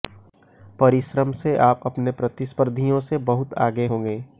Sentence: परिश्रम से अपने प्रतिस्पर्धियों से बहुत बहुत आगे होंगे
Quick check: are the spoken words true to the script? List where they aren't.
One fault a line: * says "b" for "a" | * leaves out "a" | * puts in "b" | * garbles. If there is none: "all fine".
* puts in "आप"
* leaves out "बहुत"